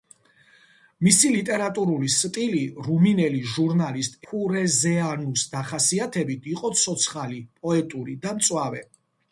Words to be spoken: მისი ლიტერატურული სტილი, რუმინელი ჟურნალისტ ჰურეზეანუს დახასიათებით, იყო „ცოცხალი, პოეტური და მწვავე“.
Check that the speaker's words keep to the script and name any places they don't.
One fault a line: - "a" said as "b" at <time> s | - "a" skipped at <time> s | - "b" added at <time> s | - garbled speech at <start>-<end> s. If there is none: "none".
none